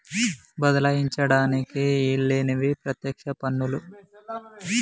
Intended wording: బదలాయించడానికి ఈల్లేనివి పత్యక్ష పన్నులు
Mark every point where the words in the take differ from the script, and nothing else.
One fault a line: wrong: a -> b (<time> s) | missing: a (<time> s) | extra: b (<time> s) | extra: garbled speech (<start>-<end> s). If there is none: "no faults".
no faults